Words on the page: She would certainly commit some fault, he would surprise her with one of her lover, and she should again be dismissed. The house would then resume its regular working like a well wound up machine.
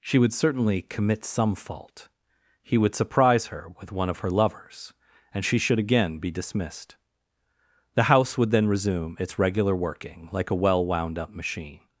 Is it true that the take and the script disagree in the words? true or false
true